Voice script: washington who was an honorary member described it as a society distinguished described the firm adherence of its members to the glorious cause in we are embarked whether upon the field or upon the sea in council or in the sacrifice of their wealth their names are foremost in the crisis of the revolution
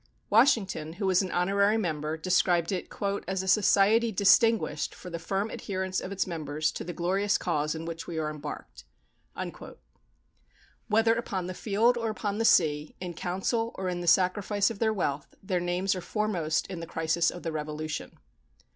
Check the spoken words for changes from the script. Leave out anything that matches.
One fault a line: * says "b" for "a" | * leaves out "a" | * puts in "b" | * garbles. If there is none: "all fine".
* says "for" for "described"
* puts in "which"